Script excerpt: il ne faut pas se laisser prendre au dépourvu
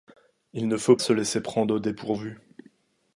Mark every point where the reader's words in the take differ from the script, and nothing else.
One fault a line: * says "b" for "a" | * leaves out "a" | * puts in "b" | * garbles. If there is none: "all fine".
* leaves out "pas"